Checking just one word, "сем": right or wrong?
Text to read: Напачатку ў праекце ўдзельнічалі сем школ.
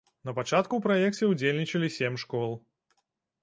right